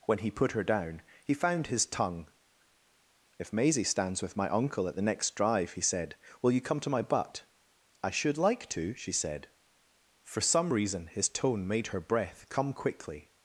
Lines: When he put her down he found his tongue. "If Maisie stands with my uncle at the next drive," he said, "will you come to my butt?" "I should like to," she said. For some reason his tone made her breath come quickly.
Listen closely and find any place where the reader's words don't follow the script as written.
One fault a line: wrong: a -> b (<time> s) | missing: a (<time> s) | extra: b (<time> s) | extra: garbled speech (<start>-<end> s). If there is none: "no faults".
no faults